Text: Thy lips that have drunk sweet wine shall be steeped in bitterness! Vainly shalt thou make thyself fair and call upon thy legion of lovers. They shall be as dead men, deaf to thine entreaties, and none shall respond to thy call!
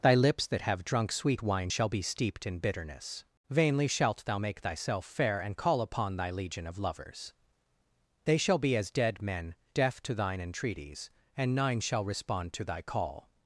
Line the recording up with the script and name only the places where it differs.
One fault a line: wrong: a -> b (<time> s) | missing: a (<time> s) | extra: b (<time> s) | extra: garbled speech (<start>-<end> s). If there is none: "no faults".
wrong: none -> nine (11.5 s)